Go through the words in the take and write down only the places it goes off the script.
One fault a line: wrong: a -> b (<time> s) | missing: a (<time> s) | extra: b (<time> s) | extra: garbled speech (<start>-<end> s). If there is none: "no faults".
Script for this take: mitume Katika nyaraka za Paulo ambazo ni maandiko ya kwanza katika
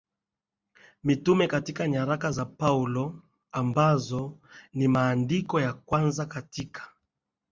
no faults